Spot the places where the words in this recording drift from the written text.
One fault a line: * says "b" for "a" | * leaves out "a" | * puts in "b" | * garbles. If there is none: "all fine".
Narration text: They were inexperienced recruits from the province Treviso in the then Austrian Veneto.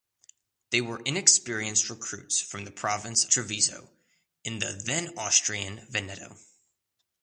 all fine